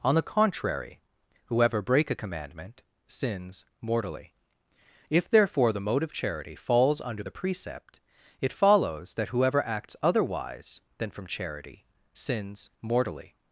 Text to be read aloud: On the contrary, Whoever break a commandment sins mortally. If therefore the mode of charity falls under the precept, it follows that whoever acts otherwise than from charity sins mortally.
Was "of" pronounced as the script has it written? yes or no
yes